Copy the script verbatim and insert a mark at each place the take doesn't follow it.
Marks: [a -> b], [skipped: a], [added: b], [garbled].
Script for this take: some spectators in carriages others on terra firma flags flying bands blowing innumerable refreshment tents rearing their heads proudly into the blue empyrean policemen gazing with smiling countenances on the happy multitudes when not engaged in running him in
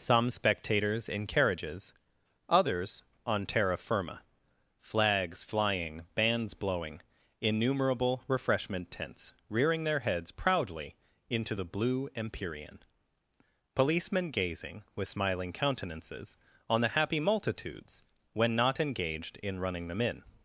some spectators in carriages others on terra firma flags flying bands blowing innumerable refreshment tents rearing their heads proudly into the blue empyrean policemen gazing with smiling countenances on the happy multitudes when not engaged in running [him -> them] in